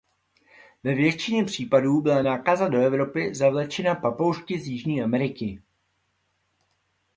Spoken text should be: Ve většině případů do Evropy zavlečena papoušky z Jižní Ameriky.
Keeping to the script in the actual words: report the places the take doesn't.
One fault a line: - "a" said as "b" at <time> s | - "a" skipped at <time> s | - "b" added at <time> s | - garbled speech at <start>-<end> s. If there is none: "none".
- "byla nákaza" added at 2.0 s